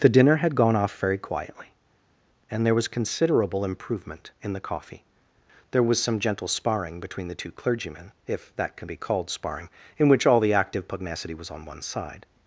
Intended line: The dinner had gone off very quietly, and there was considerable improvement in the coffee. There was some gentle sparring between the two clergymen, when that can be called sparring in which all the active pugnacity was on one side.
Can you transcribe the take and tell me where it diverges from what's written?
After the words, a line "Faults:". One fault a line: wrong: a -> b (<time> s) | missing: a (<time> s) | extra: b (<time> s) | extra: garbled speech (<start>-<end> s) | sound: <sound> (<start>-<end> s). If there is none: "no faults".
The dinner had gone off very quietly, and there was considerable improvement in the coffee. There was some gentle sparring between the two clergymen, if that can be called sparring in which all the active pugnacity was on one side.
Faults:
wrong: when -> if (8.3 s)